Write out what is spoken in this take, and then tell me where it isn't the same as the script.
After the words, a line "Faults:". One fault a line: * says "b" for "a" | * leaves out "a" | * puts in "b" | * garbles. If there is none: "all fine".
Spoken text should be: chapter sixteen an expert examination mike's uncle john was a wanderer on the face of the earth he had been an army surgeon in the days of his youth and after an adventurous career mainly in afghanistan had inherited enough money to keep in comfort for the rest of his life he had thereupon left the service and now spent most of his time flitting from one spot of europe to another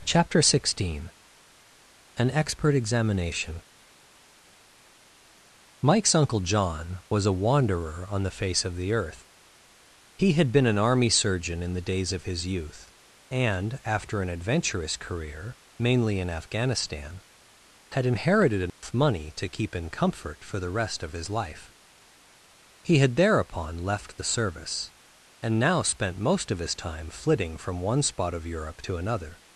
chapter sixteen an expert examination mike's uncle john was a wanderer on the face of the earth he had been an army surgeon in the days of his youth and after an adventurous career mainly in afghanistan had inherited enough money to keep in comfort for the rest of his life he had thereupon left the service and now spent most of his time flitting from one spot of europe to another
Faults:
all fine